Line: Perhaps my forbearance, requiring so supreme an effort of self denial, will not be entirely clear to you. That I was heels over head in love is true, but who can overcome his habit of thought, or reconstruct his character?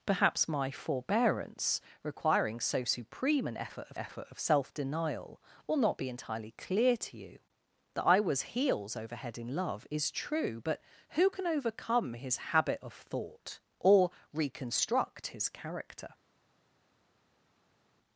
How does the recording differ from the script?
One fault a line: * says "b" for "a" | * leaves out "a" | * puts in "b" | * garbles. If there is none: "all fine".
* puts in "effort of"